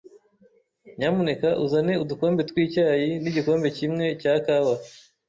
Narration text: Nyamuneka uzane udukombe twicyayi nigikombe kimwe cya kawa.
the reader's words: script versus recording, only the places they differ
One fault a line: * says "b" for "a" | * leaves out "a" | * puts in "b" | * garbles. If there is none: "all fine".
all fine